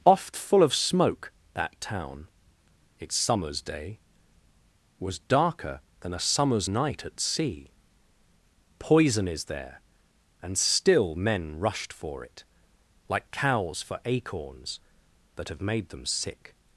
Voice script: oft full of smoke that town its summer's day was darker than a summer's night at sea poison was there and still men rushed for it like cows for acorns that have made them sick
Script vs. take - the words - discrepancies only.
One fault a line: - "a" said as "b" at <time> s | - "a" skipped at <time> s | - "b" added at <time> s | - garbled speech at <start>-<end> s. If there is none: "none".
- "was" said as "is" at 9.3 s